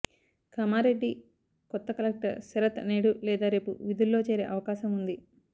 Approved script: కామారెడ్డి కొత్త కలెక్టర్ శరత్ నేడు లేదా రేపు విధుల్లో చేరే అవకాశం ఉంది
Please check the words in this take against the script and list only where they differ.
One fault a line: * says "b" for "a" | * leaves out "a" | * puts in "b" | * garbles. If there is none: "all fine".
all fine